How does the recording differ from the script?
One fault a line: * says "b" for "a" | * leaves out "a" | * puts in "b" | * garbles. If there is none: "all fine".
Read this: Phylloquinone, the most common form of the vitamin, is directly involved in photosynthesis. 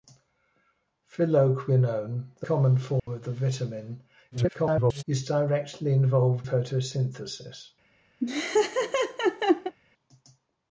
* leaves out "most"
* garbles
* leaves out "in"